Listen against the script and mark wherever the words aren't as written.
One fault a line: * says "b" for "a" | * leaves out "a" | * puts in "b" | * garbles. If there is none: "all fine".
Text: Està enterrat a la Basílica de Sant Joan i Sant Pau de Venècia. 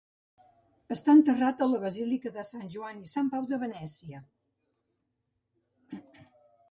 all fine